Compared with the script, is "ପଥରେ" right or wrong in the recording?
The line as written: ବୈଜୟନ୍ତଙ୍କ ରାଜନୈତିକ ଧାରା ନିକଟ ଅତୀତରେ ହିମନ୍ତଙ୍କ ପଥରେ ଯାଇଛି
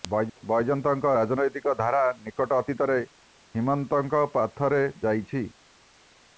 right